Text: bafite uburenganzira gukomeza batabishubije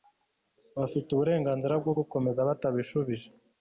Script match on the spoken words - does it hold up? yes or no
no